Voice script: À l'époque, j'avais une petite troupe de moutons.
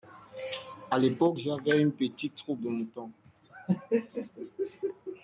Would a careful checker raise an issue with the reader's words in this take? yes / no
no